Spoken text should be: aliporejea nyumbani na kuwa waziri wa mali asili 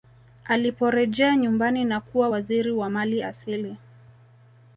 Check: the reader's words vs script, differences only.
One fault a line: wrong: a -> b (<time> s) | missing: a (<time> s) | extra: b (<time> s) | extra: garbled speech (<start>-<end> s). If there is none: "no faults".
no faults